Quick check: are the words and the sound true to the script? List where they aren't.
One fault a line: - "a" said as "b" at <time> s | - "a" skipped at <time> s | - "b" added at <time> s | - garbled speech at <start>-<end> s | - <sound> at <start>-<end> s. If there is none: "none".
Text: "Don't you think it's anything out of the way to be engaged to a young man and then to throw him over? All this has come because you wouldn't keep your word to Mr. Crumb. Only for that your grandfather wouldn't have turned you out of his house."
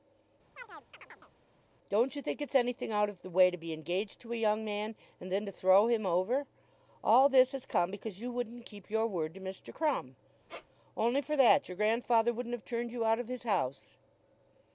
- chirp at 0.6-1.3 s
- squeak at 10.5-10.7 s